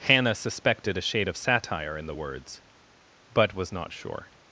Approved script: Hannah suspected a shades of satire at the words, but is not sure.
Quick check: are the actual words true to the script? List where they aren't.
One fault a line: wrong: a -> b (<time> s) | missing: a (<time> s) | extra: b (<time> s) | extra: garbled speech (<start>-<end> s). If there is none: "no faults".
wrong: shades -> shade (1.0 s)
wrong: at -> in (1.9 s)
wrong: is -> was (3.6 s)